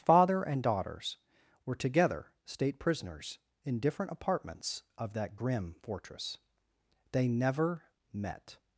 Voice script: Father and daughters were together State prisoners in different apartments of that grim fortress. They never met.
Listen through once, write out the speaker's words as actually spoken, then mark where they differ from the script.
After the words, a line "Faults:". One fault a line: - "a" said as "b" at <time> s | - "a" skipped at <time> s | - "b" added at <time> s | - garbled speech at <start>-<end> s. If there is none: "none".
Father and daughters were together State prisoners in different apartments of that grim fortress. They never met.
Faults:
none